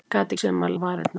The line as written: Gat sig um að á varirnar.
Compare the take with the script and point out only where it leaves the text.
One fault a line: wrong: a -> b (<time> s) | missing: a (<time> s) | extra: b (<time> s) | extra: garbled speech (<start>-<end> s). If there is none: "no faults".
no faults